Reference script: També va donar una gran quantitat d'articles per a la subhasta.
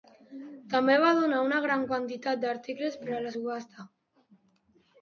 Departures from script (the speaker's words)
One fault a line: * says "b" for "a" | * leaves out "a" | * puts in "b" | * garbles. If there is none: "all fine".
all fine